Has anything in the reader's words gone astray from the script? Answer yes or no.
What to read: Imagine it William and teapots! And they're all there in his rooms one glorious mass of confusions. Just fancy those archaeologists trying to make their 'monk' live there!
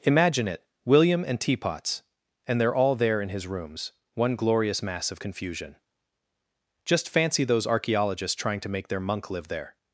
yes